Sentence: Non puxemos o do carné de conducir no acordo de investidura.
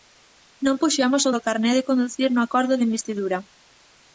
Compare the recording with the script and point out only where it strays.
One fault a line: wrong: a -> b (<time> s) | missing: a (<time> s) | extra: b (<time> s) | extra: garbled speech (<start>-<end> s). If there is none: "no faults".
no faults